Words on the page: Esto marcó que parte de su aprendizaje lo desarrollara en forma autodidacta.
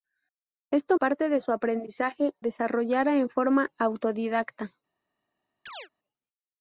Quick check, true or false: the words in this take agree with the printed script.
false